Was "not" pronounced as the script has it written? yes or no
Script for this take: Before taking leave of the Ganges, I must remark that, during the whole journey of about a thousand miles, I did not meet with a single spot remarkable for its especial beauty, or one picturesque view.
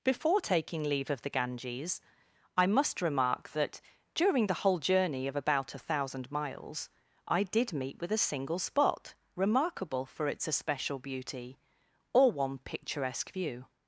no